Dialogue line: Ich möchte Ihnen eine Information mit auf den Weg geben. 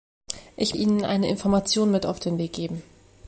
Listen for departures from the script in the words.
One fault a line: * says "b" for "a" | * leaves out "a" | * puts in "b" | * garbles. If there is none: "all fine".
* leaves out "möchte"